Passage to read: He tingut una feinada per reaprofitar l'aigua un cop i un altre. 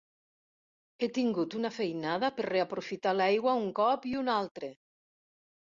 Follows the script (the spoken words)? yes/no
yes